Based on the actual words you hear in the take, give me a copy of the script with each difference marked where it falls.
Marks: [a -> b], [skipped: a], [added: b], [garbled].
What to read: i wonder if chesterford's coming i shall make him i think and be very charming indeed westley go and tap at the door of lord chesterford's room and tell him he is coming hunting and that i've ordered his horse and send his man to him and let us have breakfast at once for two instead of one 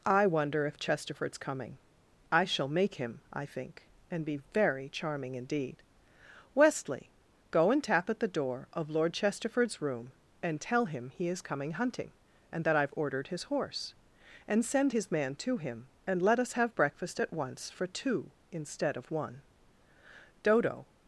i wonder if chesterford's coming i shall make him i think and be very charming indeed westley go and tap at the door of lord chesterford's room and tell him he is coming hunting and that i've ordered his horse and send his man to him and let us have breakfast at once for two instead of one [added: dodo]